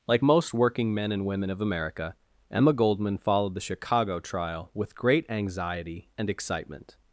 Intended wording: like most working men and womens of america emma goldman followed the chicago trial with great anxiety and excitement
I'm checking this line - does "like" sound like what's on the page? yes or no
yes